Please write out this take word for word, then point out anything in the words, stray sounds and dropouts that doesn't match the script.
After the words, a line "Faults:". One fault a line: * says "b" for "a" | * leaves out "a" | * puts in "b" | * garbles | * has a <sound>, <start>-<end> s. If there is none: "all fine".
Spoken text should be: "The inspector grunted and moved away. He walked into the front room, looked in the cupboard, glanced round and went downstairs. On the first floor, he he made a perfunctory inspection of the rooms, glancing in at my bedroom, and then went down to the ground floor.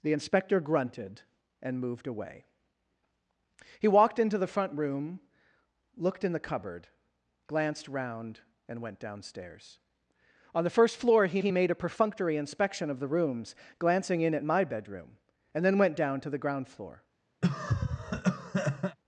"The inspector grunted and moved away. He walked into the front room, looked in the cupboard, glanced round and went downstairs. On the first floor, he he made a perfunctory inspection of the rooms, glancing in at my bedroom, and then went down to the ground floor.
Faults:
* has a cough, 17.4-19.0 s